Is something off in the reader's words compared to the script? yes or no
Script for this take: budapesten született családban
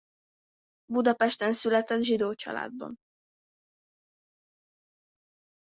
yes